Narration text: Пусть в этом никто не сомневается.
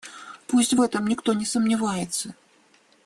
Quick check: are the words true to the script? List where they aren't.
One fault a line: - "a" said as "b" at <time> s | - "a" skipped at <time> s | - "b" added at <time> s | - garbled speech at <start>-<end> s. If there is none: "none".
none